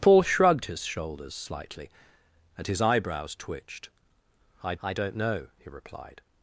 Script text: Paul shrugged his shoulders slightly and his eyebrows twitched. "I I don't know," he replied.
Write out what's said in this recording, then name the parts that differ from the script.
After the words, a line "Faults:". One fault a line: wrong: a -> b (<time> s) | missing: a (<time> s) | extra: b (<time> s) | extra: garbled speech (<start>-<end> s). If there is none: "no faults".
Paul shrugged his shoulders slightly and his eyebrows twitched. "I I don't know," he replied.
Faults:
no faults